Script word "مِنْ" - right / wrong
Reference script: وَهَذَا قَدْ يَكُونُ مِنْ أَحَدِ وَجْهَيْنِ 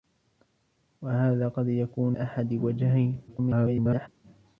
wrong